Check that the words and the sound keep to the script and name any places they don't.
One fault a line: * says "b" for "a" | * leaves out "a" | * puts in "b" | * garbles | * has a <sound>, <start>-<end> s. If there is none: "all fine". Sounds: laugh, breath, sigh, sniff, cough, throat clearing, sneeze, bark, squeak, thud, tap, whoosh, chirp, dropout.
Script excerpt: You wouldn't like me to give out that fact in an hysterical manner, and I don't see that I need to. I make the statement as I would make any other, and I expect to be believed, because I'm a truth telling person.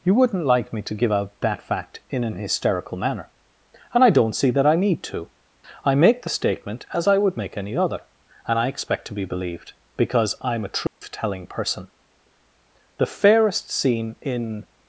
* has a dropout, 10.9-11.0 s
* puts in "The fairest scene in"